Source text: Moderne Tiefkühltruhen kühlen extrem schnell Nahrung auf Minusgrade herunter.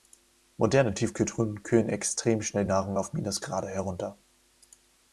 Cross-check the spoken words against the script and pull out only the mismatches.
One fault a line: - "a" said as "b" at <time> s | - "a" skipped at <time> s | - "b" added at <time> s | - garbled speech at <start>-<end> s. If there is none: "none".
none